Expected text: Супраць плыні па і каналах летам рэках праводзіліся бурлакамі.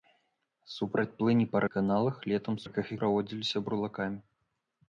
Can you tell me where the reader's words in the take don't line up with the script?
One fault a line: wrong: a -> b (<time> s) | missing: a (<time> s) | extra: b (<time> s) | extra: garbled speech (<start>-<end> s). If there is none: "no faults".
no faults